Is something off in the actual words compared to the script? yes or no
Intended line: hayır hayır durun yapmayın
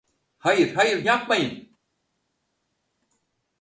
yes